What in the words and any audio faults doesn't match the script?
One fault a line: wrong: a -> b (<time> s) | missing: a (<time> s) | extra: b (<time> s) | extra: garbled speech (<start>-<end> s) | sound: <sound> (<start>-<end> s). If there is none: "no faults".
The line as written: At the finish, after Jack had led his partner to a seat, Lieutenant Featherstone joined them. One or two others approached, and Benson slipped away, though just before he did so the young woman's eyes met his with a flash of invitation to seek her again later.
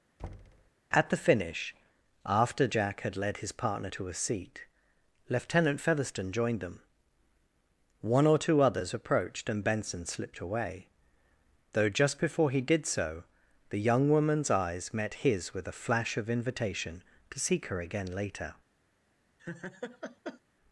sound: thud (0.2-0.7 s)
sound: laugh (19.4-20.4 s)